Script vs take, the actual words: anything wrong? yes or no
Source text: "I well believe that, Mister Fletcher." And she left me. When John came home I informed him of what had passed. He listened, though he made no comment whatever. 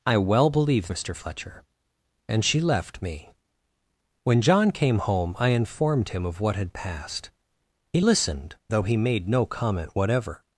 yes